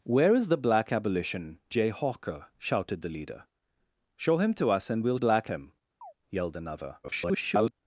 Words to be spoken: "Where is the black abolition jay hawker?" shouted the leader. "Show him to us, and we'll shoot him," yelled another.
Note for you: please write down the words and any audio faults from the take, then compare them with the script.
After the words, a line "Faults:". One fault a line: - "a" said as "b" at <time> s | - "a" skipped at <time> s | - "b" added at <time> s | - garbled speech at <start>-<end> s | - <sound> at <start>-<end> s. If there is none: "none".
"Where is the black abolition jay hawker?" shouted the leader. "Show him to us, and we'll black him," yelled another. [garbled]
Faults:
- "shoot" said as "black" at 5.1 s
- chirp at 6.0-6.1 s
- garbled speech at 7.0-7.7 s